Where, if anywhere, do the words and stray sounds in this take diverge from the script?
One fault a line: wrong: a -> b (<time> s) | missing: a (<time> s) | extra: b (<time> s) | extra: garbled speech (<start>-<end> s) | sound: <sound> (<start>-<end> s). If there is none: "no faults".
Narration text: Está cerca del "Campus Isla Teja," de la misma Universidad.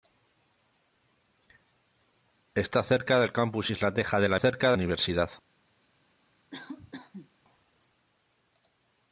wrong: misma -> cerca (4.3 s)
sound: cough (6.5-7.3 s)